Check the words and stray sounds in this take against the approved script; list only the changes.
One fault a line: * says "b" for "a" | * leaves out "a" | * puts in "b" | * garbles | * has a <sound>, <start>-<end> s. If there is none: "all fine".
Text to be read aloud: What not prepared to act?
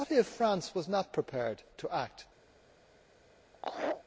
* puts in "if France was"
* has a laugh, 3.5-4.0 s